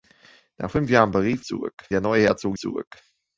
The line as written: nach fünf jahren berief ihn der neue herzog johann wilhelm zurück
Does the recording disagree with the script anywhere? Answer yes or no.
yes